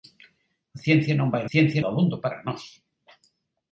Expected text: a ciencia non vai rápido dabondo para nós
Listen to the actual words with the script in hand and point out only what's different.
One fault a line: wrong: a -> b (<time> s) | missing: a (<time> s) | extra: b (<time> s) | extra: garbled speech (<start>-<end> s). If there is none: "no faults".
wrong: rápido -> ciencia (1.5 s)